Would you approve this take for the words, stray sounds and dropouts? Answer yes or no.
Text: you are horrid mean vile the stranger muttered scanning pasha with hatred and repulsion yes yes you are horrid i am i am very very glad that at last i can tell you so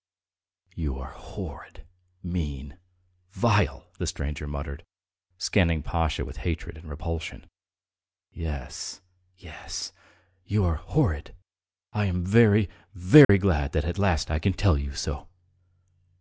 no